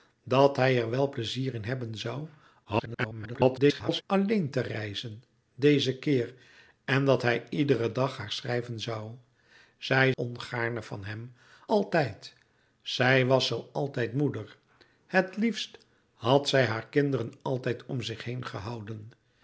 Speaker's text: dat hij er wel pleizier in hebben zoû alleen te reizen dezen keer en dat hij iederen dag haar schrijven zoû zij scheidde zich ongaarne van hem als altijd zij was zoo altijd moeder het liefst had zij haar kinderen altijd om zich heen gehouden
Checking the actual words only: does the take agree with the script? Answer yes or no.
no